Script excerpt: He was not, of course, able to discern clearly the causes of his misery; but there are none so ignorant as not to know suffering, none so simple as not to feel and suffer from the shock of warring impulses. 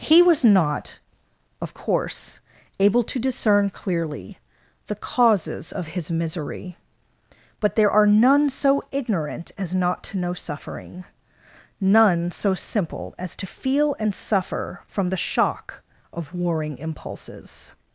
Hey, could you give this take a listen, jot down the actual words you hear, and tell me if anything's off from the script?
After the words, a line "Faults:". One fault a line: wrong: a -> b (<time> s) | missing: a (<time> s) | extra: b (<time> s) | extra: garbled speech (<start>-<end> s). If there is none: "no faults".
He was not, of course, able to discern clearly the causes of his misery; but there are none so ignorant as not to know suffering, none so simple as to feel and suffer from the shock of warring impulses.
Faults:
missing: not (13.3 s)